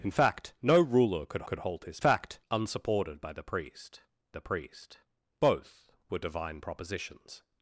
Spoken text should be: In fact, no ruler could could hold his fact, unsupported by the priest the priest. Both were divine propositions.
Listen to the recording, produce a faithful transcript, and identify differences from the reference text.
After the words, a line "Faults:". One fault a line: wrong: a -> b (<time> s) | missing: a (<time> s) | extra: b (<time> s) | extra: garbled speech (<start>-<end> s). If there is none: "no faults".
In fact, no ruler could could hold his fact, unsupported by the priest the priest. Both were divine propositions.
Faults:
no faults